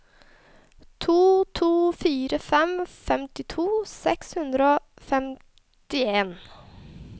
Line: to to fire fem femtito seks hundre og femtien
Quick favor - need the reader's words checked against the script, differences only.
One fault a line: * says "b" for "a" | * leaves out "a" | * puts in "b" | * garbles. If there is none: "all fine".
all fine